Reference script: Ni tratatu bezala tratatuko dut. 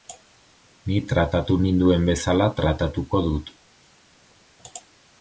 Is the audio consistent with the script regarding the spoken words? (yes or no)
no